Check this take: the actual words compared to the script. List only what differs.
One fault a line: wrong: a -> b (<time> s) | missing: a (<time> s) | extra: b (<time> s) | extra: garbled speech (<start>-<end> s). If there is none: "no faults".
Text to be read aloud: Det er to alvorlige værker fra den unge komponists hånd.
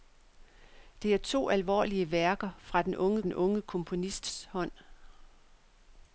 extra: den unge (3.2 s)